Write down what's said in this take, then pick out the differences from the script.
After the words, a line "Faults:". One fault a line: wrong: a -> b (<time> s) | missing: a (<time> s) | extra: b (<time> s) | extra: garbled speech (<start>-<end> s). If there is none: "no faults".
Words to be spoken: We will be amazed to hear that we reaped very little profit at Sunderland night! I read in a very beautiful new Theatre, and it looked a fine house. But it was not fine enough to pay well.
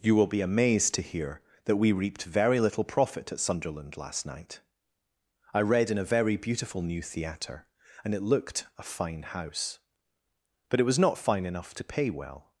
You will be amazed to hear that we reaped very little profit at Sunderland last night! I read in a very beautiful new Theatre, and it looked a fine house. But it was not fine enough to pay well.
Faults:
wrong: We -> You (0.0 s)
extra: last (4.0 s)